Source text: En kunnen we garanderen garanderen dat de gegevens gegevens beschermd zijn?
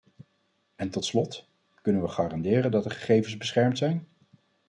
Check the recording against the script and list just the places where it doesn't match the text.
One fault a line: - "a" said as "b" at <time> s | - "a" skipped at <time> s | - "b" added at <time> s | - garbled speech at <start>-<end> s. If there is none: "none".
- "tot slot" added at 0.9 s
- "garanderen" skipped at 2.7 s
- "gegevens" skipped at 3.4 s